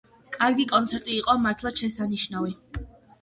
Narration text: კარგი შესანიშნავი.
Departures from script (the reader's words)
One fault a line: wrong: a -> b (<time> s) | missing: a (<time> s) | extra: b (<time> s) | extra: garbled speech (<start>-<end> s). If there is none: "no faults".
extra: კონცერტი იყო მართლაც (0.7 s)